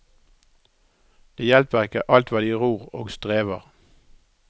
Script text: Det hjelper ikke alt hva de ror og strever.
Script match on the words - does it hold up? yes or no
yes